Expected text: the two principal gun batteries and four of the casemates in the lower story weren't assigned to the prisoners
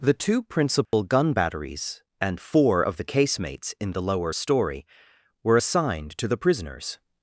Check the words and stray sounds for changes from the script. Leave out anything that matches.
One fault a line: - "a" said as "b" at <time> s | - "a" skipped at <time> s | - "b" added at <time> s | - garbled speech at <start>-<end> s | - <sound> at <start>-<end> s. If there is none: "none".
- dropout at 0.9-0.9 s
- "weren't" said as "were" at 5.4 s